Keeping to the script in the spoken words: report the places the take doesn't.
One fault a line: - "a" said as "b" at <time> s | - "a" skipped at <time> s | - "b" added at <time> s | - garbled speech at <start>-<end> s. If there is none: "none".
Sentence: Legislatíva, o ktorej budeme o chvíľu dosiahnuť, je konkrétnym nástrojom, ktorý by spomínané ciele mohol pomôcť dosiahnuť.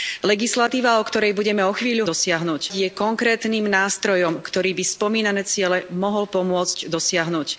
none